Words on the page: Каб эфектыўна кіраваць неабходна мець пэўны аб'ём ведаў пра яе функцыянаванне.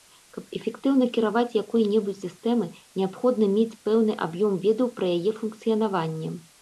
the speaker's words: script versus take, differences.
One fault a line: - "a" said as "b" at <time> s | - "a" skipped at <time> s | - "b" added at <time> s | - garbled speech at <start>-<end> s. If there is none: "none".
- "якой небудзь сістэмай" added at 1.6 s